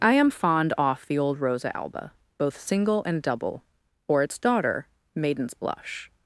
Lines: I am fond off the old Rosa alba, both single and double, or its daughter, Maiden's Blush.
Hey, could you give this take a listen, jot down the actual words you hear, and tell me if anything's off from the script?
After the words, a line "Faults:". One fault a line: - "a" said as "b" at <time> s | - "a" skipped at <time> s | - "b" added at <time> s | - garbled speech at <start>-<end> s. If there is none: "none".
I am fond off the old Rosa alba, both single and double, or its daughter, Maiden's Blush.
Faults:
none